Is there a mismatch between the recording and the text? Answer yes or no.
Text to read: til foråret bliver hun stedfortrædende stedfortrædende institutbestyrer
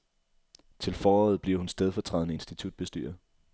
yes